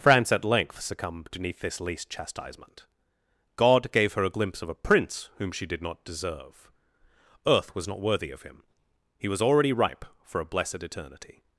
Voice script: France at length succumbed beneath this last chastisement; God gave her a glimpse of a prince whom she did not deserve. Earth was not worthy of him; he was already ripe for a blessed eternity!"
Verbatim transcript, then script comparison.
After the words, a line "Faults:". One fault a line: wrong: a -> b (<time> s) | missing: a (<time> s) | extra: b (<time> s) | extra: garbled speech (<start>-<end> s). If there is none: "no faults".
France at length succumbed beneath this least chastisement; God gave her a glimpse of a prince whom she did not deserve. Earth was not worthy of him; he was already ripe for a blessed eternity!"
Faults:
wrong: last -> least (1.8 s)